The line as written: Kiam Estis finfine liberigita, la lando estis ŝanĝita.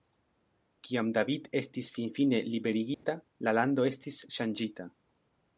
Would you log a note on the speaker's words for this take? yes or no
yes